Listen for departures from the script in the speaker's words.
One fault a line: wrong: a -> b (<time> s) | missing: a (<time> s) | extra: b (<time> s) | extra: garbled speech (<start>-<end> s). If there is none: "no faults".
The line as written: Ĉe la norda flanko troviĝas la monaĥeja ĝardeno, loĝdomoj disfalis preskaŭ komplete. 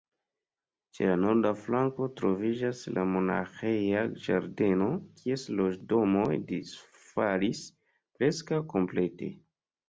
extra: kies (5.2 s)